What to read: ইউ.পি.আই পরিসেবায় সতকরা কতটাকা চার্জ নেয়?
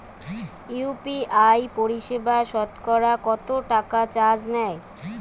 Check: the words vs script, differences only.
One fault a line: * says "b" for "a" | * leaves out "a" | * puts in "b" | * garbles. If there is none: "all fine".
all fine